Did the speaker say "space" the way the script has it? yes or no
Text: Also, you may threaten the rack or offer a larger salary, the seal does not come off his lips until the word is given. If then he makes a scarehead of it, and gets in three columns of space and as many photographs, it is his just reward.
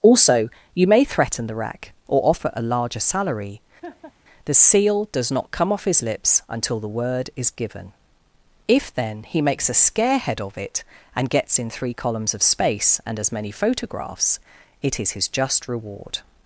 yes